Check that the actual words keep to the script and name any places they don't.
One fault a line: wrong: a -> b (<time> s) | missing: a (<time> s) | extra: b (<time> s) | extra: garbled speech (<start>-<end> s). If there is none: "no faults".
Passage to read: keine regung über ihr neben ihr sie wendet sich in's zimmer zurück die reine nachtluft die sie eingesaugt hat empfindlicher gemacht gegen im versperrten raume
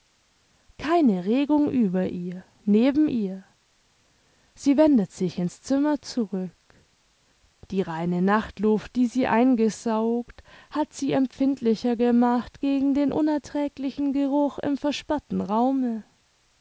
extra: sie (10.9 s)
extra: den unerträglichen geruch (12.9 s)